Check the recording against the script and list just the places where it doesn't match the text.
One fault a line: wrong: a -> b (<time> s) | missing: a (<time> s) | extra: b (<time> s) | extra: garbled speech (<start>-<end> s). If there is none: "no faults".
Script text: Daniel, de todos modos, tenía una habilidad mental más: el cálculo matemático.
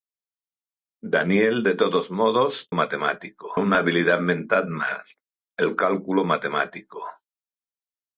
wrong: tenía -> matemático (2.7 s)